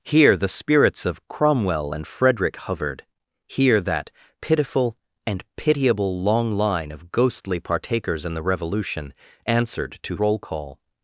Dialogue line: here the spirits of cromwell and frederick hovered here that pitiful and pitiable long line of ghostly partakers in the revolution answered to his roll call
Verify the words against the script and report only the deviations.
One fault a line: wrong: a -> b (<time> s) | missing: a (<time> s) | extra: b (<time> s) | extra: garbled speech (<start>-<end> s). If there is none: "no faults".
missing: his (10.1 s)